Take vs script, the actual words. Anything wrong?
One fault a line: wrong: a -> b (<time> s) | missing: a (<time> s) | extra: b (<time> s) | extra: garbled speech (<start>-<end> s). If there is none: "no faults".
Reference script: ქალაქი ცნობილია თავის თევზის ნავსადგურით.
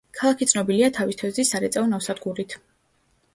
extra: სარეწაო (1.5 s)